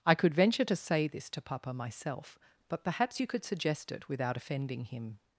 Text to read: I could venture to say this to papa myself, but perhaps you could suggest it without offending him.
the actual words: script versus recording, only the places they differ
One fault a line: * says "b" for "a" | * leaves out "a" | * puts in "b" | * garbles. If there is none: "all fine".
all fine